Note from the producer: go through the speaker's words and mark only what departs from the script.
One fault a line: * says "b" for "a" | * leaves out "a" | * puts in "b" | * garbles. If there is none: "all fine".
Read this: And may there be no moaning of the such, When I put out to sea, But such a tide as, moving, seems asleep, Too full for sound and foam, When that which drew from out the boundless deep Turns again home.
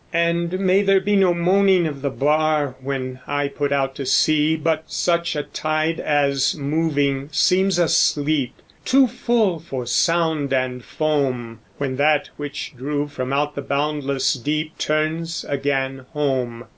* says "bar" for "such"